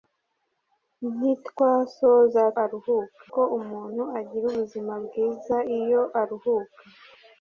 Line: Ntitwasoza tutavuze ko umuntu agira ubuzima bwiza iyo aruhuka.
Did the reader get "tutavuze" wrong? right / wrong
wrong